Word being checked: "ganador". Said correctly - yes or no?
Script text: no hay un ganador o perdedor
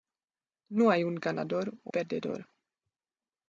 yes